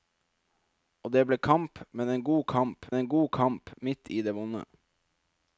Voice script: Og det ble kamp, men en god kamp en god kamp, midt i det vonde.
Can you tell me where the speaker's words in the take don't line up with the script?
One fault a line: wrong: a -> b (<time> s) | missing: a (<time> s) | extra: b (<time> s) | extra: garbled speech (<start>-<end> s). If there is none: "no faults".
no faults